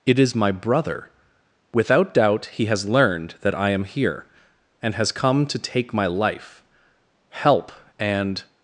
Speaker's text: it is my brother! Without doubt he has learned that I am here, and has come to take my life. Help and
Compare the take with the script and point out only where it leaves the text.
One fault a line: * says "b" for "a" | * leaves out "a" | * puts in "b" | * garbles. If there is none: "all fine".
all fine